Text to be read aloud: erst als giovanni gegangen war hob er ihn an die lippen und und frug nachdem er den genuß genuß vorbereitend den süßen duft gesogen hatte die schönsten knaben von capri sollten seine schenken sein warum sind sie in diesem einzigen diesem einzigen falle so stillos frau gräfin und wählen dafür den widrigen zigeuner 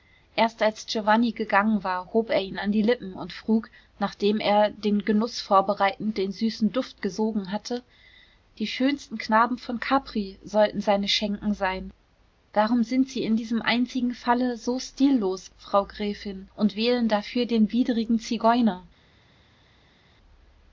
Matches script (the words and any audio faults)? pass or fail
fail